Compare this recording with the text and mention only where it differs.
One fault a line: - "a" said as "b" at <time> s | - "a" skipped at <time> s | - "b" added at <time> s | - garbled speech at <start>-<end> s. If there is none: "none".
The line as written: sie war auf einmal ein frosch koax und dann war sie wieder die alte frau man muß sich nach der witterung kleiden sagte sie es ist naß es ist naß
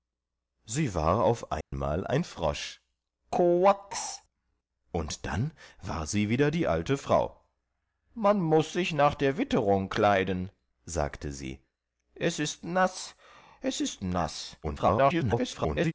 - garbled speech at 14.6-15.9 s